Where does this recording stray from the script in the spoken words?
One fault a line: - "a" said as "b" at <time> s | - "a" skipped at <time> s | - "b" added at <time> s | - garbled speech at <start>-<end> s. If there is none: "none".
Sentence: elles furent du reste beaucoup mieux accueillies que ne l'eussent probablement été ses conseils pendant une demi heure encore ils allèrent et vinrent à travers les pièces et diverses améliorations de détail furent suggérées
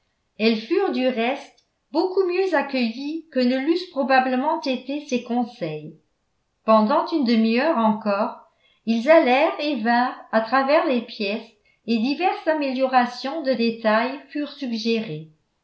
none